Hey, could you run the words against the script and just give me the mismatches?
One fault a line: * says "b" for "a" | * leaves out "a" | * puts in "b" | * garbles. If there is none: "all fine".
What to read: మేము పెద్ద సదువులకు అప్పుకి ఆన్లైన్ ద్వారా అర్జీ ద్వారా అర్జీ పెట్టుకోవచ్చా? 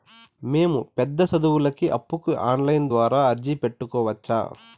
* leaves out "ద్వారా అర్జీ"